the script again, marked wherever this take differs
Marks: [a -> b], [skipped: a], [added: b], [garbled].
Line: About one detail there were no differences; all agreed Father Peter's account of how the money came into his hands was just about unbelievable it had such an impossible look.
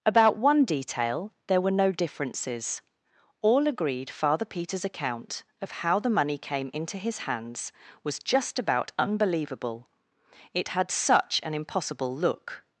About one detail there were no differences; all agreed Father Peter's account of how the money came into his hands was just about unbelievable it had such an impossible look.